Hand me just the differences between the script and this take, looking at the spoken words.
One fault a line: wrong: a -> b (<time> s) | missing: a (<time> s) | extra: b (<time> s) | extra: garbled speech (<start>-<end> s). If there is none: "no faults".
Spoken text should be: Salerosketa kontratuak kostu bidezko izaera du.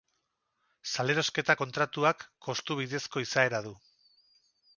no faults